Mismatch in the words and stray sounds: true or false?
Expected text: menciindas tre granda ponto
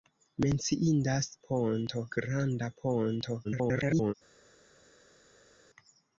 true